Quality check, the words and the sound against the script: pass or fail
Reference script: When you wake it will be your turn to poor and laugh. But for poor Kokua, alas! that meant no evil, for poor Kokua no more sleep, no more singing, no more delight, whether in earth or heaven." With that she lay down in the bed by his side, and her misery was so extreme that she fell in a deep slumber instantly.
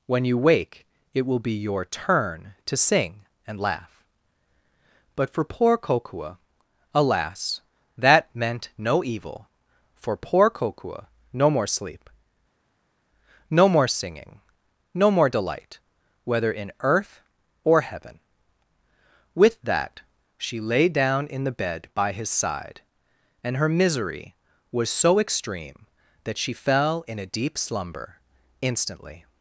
fail